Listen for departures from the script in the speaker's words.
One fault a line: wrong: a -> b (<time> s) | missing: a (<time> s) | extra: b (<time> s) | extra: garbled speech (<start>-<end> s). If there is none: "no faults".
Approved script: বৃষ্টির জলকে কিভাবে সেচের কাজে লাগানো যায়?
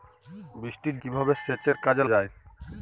missing: জলকে (0.9 s)
missing: লাগানো (2.0 s)